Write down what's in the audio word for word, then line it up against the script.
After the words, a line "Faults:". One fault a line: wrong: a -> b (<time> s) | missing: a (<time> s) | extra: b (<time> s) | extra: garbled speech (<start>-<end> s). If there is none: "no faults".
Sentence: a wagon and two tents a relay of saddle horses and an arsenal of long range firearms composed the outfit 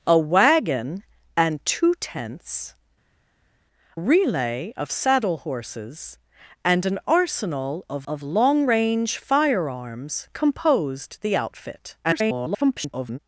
a wagon and two tents relay of saddle horses and an arsenal of of long range firearms composed the outfit [garbled]
Faults:
missing: a (2.7 s)
extra: of (8.1 s)
extra: garbled speech (12.0-13.2 s)